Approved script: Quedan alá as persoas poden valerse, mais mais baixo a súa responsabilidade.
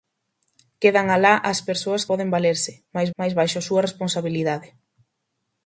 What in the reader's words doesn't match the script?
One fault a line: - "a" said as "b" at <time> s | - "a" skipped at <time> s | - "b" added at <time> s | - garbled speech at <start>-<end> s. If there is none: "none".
none